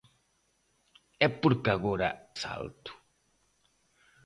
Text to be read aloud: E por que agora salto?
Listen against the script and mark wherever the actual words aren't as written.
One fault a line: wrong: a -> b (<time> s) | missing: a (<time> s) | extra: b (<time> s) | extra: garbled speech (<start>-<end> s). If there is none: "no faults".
no faults